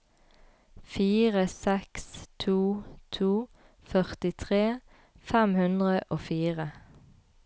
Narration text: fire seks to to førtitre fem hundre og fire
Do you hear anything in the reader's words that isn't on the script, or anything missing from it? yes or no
no